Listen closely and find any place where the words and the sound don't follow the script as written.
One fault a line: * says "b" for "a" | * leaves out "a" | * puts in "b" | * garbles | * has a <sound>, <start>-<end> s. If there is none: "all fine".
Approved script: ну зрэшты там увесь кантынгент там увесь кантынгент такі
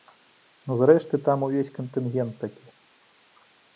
* leaves out "там увесь кантынгент"